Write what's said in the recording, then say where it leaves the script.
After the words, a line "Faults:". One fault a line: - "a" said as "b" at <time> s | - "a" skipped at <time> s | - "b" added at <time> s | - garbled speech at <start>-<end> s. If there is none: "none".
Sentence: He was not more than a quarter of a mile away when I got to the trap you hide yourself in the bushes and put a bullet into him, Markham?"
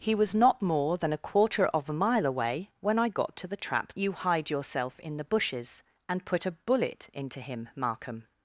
He was not more than a quarter of a mile away when I got to the trap you hide yourself in the bushes and put a bullet into him, Markham?"
Faults:
none